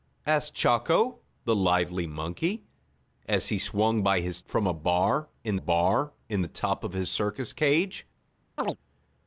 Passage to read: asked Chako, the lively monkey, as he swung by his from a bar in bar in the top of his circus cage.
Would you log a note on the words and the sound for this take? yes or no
yes